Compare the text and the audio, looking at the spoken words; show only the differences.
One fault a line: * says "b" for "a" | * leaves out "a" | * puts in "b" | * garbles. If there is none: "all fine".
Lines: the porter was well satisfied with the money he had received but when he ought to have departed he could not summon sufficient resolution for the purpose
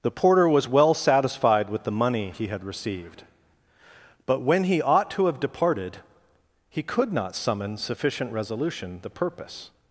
* leaves out "for"